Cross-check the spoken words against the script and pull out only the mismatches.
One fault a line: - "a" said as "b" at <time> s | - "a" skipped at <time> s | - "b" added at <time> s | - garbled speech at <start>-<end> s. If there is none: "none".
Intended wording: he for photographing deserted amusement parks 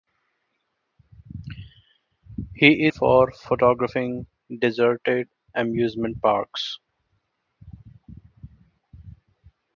none